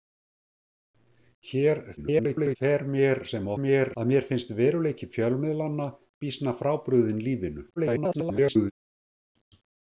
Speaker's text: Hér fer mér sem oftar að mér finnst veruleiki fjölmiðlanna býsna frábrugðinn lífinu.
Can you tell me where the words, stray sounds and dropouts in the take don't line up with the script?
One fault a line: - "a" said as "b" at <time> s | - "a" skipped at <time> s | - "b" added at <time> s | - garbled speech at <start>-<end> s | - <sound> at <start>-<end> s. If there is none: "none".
- garbled speech at 2.0-2.6 s
- "oftar" said as "mér" at 3.6 s
- garbled speech at 7.8-8.7 s